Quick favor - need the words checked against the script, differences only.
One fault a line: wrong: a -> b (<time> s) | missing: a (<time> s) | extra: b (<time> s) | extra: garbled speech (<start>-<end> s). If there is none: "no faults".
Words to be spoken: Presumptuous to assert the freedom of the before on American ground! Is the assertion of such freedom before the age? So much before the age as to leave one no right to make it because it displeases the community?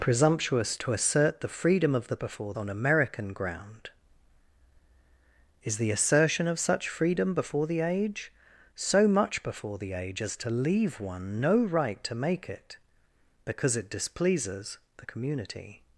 no faults